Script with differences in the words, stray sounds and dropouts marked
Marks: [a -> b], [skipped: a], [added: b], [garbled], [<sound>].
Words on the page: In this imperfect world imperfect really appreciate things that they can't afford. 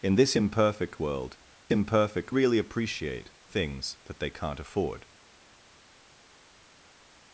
In this imperfect world imperfect really appreciate things that they can't afford.